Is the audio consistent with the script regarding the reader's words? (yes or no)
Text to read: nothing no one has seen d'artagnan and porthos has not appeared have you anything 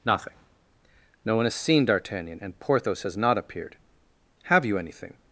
yes